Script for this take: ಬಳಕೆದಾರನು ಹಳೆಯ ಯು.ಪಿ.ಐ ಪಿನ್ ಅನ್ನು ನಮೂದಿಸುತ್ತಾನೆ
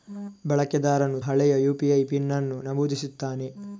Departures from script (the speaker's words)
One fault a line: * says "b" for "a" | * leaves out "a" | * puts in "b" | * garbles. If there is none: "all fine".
all fine